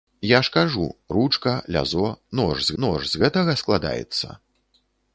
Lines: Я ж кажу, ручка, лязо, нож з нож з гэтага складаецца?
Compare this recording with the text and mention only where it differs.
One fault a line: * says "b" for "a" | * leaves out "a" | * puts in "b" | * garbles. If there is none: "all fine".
all fine